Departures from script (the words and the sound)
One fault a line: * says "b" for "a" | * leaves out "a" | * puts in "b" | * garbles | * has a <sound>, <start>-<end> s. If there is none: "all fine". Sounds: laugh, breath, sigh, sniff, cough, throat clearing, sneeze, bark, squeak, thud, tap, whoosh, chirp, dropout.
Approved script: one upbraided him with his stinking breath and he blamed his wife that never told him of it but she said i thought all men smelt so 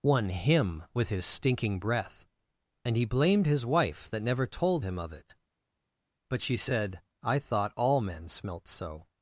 * leaves out "upbraided"